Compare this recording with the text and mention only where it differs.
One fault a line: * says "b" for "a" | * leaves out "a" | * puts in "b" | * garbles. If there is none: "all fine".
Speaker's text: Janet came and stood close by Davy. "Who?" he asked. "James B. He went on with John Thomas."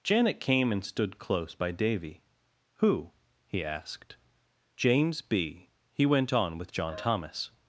all fine